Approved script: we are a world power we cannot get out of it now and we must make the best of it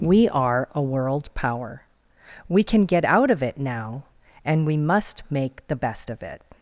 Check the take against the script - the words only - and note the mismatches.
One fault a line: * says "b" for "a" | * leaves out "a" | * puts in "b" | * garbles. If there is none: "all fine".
* says "can" for "cannot"